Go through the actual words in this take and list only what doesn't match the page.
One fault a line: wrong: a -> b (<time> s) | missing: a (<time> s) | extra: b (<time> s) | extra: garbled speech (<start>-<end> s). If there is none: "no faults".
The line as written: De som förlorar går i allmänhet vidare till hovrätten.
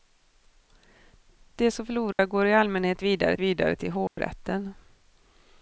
extra: vidare (3.4 s)